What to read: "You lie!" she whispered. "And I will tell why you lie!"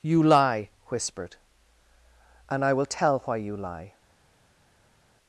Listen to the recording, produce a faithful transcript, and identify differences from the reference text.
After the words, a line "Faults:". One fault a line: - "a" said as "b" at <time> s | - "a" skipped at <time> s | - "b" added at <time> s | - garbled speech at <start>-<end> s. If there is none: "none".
"You lie!" whispered. "And I will tell why you lie!"
Faults:
- "she" skipped at 0.7 s